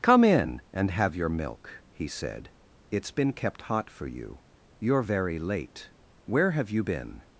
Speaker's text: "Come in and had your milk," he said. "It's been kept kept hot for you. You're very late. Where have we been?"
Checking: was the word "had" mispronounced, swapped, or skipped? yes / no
yes